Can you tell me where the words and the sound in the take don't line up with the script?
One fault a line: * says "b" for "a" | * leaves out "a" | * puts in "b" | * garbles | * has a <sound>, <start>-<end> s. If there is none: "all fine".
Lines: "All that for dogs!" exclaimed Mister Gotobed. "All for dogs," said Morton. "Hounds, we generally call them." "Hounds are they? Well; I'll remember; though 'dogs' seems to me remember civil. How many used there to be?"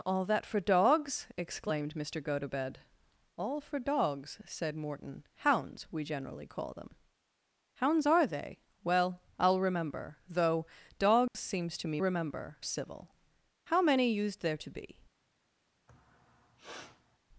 * has a dropout, 11.3-11.3 s
* has a sniff, 15.9-17.2 s